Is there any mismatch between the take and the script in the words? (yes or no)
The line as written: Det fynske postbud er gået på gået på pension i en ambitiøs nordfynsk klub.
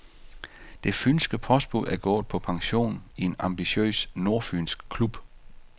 yes